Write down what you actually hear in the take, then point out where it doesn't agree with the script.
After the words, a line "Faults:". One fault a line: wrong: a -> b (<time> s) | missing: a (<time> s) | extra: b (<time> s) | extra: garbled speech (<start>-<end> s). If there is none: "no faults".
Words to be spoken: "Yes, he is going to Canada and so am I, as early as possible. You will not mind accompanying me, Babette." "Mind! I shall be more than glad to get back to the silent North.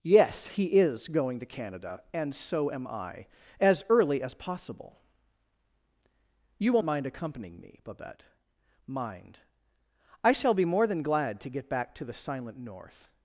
"Yes, he is going to Canada and so am I, as early as possible. You will mind accompanying me, Babette." "Mind! I shall be more than glad to get back to the silent North.
Faults:
missing: not (6.8 s)